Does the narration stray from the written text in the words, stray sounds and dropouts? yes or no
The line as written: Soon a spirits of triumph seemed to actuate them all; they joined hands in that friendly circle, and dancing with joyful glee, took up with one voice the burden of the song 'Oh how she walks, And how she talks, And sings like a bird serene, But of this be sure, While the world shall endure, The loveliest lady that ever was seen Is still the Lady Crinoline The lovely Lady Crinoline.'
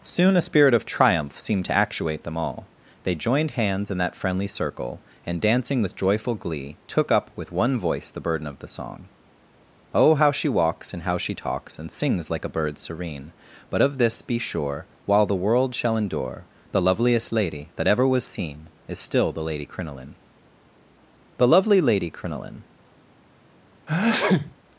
yes